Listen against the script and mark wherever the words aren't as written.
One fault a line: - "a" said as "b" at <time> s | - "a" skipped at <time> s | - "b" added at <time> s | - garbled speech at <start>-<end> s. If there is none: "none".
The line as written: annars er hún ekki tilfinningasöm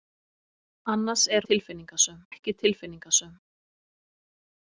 - "hún" said as "tilfinningasöm" at 1.5 s